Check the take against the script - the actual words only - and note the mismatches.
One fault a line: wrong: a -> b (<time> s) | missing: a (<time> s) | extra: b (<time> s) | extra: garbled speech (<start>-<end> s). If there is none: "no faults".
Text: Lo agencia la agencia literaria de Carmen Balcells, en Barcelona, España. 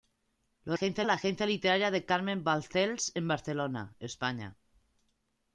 no faults